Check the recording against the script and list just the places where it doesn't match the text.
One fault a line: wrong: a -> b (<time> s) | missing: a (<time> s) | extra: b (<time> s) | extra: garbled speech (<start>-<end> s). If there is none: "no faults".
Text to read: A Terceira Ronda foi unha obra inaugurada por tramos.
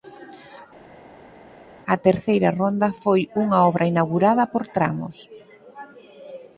no faults